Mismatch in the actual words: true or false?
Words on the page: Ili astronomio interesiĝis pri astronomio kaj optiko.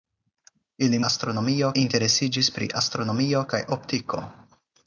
false